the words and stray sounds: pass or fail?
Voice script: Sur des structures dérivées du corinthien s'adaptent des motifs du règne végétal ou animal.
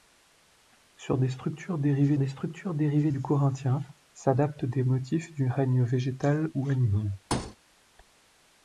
fail